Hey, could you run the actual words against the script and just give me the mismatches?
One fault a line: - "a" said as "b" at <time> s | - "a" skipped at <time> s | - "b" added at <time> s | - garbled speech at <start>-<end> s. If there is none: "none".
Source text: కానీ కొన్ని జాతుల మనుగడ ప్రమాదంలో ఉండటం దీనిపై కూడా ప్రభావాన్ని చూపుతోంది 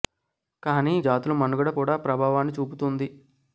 - "కొన్ని" skipped at 0.9 s
- "ప్రమాదంలో ఉండటం దీనిపై" skipped at 1.7 s